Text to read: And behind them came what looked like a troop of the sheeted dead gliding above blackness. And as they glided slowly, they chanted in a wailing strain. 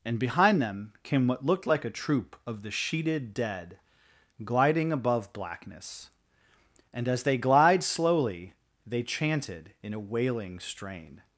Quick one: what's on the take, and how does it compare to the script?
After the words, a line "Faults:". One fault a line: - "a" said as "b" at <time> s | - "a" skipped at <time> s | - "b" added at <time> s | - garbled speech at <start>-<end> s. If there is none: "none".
And behind them came what looked like a troop of the sheeted dead gliding above blackness. And as they glide slowly, they chanted in a wailing strain.
Faults:
- "glided" said as "glide" at 7.4 s